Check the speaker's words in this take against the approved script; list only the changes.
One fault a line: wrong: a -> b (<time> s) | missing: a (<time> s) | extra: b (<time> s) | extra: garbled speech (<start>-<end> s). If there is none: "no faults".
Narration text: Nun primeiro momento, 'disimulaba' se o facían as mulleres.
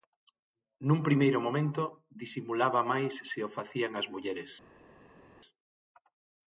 extra: máis (2.9 s)